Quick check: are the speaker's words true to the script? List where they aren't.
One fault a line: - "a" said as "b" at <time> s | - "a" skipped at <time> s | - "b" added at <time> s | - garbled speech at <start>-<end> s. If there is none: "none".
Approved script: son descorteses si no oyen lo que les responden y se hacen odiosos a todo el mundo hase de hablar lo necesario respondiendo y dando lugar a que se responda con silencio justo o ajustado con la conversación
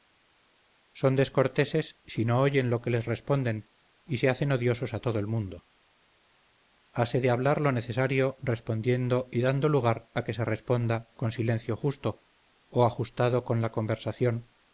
none